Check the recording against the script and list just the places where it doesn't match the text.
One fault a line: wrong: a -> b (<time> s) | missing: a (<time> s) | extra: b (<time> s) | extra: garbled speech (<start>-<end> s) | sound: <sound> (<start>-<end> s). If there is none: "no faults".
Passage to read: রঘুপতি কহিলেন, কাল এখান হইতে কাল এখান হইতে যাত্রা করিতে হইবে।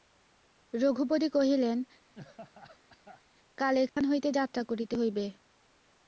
sound: laugh (2.1-3.2 s)
sound: dropout (3.9-4.0 s)
missing: কাল এখান হইতে (4.3 s)